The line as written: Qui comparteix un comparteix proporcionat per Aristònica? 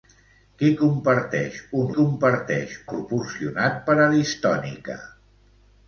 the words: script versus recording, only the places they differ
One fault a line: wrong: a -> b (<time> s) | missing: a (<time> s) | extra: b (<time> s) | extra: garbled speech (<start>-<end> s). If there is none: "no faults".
no faults